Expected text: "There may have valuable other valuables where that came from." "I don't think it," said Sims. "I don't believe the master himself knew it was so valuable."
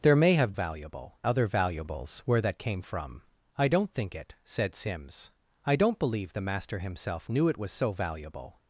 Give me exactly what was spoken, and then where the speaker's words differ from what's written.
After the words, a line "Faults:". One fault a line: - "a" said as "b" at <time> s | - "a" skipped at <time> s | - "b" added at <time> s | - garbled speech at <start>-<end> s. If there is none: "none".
"There may have valuable other valuables where that came from." "I don't think it," said Sims. "I don't believe the master himself knew it was so valuable."
Faults:
none